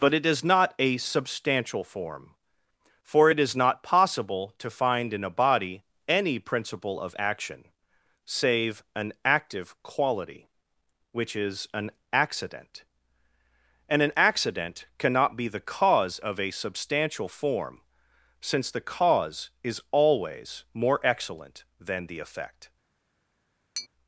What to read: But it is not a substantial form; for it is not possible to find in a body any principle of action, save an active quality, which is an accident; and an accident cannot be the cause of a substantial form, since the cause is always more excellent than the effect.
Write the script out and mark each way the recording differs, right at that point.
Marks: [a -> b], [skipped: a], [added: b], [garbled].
But it is not a substantial form; for it is not possible to find in a body any principle of action, save an active quality, which is an accident; and an accident cannot be the cause of a substantial form, since the cause is always more excellent than the effect.